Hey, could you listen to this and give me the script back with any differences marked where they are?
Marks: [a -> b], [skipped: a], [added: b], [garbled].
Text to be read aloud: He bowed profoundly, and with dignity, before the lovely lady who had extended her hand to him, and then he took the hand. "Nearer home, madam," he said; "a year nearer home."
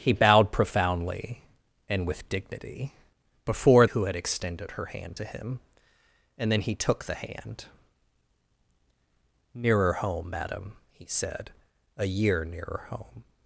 He bowed profoundly, and with dignity, before [skipped: the lovely lady] who had extended her hand to him, and then he took the hand. "Nearer home, madam," he said; "a year nearer home."